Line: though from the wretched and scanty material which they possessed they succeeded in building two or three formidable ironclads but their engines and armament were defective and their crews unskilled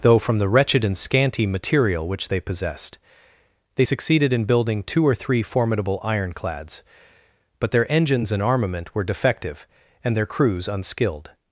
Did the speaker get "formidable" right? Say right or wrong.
right